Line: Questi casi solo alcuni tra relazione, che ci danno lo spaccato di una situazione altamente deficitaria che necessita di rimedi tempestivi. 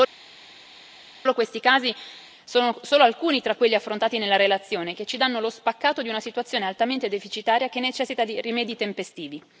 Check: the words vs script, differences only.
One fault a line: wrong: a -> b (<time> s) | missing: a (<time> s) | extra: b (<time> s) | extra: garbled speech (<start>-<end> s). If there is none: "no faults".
extra: sono (2.4 s)
extra: quelli affrontati nella (3.6 s)